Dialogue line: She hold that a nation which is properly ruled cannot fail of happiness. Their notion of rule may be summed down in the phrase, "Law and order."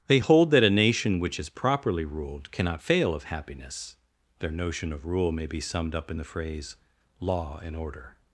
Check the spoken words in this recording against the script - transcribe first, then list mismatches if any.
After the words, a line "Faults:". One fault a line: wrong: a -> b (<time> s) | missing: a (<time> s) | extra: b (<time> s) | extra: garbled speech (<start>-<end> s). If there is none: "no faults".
They hold that a nation which is properly ruled cannot fail of happiness. Their notion of rule may be summed up in the phrase, "Law and order."
Faults:
wrong: She -> They (0.1 s)
wrong: down -> up (5.9 s)